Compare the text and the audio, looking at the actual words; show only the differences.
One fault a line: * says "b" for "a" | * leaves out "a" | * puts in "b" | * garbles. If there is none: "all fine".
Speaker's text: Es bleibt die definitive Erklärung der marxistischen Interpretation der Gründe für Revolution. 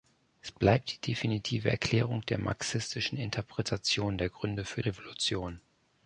all fine